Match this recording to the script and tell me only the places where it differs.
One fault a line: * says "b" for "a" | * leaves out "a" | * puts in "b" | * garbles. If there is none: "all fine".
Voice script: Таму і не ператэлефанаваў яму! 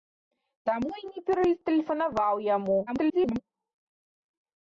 * garbles